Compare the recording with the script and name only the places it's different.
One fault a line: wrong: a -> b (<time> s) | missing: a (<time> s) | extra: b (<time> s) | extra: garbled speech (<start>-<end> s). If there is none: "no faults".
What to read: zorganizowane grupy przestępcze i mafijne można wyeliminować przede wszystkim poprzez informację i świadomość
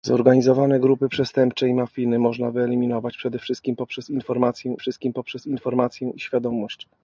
extra: wszystkim poprzez informację (4.8 s)